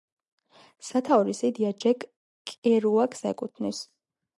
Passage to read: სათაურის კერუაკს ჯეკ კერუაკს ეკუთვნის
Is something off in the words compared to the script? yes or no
yes